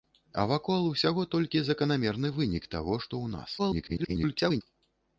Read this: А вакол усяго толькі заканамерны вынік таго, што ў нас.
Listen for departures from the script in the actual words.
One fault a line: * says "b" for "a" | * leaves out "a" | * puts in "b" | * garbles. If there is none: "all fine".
* garbles